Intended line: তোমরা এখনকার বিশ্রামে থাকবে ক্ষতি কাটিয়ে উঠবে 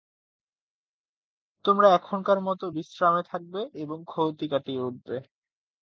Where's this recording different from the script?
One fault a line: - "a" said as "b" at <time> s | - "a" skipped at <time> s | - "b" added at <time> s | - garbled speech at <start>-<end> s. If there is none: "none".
- "মতো" added at 2.5 s
- "এবং" added at 3.8 s